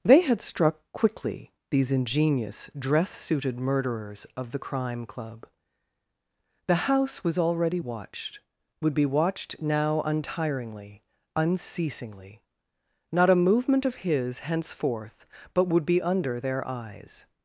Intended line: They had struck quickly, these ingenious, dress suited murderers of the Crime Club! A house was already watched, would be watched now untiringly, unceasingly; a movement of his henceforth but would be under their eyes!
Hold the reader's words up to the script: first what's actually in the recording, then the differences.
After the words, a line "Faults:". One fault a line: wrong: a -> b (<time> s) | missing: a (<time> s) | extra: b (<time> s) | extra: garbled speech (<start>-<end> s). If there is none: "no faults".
They had struck quickly, these ingenious, dress suited murderers of the Crime Club! The house was already watched, would be watched now untiringly, unceasingly; not a movement of his henceforth but would be under their eyes!
Faults:
wrong: A -> The (6.7 s)
extra: not (13.1 s)